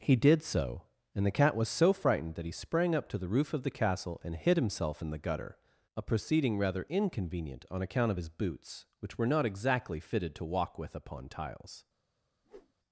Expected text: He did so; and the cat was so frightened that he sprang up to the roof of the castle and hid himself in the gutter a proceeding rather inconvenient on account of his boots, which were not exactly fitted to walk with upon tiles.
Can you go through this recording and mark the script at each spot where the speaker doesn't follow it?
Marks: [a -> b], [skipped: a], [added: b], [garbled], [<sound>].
He did so; and the cat was so frightened that he sprang up to the roof of the castle and hid himself in the gutter a proceeding rather inconvenient on account of his boots, which were not exactly fitted to walk with upon tiles. [whoosh]